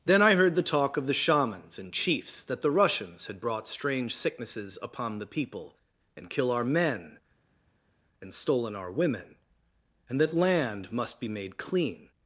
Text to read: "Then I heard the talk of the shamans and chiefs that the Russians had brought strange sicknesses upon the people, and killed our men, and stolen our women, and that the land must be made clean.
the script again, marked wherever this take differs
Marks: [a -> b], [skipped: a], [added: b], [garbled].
"Then I heard the talk of the shamans and chiefs that the Russians had brought strange sicknesses upon the people, and [killed -> kill] our men, and stolen our women, and that [skipped: the] land must be made clean.